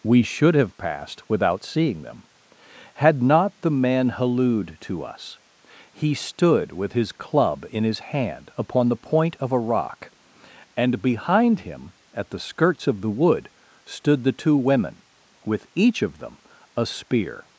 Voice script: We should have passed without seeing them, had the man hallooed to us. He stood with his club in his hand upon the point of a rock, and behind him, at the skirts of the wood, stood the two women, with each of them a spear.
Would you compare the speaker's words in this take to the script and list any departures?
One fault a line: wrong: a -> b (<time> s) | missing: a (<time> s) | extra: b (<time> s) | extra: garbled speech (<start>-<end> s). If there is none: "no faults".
extra: not (3.2 s)